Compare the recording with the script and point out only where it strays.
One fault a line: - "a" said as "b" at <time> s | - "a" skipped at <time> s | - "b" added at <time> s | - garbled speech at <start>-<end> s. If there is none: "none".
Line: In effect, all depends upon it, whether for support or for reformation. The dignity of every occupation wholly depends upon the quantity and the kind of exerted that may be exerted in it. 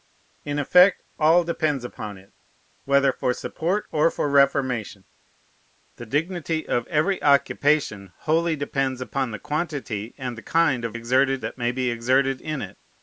none